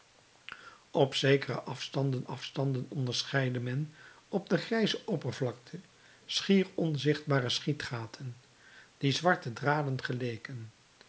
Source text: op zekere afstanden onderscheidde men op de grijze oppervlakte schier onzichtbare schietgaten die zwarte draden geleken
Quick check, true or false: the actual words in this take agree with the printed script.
false